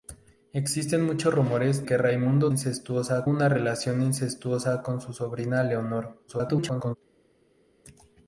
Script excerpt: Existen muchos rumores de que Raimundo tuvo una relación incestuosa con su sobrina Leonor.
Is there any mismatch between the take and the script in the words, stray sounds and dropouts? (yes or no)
yes